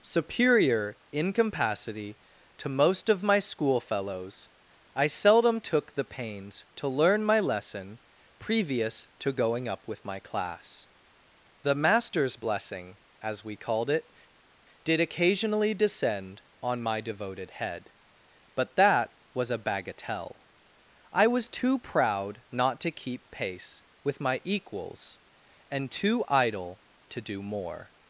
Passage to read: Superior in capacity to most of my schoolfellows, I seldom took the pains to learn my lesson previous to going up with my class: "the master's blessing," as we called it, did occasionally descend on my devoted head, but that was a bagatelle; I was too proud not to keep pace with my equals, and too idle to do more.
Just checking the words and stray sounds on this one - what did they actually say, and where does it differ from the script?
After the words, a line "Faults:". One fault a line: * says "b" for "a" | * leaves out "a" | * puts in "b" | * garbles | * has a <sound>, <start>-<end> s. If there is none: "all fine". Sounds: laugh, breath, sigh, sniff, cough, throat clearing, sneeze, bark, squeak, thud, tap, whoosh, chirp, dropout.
Superior in capacity to most of my schoolfellows, I seldom took the pains to learn my lesson previous to going up with my class: "the master's blessing," as we called it, did occasionally descend on my devoted head, but that was a bagatelle; I was too proud not to keep pace with my equals, and too idle to do more.
Faults:
all fine